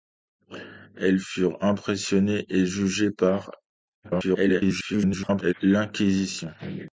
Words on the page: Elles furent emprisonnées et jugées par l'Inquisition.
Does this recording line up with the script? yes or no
no